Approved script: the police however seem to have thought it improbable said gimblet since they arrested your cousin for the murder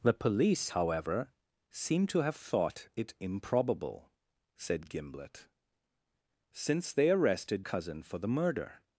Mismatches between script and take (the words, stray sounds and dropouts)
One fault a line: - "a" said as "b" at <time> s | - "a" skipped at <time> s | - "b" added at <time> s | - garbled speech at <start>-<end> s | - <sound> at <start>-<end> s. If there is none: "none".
- "your" skipped at 7.7 s